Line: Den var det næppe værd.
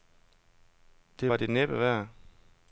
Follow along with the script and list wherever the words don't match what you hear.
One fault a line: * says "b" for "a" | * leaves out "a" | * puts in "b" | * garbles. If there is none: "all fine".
* says "Det" for "Den"